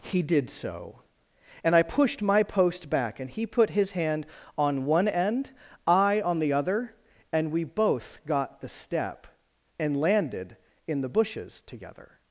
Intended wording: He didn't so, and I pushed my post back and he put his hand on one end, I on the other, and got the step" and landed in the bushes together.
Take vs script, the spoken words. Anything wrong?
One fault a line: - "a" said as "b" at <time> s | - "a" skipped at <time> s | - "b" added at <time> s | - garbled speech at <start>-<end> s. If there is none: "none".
- "didn't" said as "did" at 0.2 s
- "we both" added at 7.5 s